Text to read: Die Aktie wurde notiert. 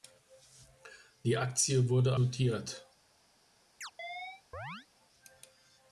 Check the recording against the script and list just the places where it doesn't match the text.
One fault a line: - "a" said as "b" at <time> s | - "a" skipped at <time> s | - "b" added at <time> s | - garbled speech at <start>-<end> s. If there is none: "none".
none